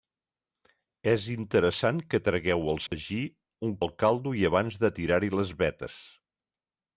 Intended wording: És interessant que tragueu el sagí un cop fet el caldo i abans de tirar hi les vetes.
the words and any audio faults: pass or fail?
fail